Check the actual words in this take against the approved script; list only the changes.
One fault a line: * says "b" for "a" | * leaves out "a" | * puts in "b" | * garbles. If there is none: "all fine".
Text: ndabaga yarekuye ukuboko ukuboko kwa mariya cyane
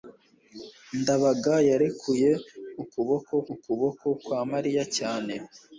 all fine